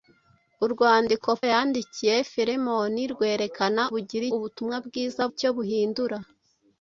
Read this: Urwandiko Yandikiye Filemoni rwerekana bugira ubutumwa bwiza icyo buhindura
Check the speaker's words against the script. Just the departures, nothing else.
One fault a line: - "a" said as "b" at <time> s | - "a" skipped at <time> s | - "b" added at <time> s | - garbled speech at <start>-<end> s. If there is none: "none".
none